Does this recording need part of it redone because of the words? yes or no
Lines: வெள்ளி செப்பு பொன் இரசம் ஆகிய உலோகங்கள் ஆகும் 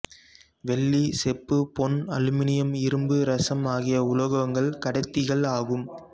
yes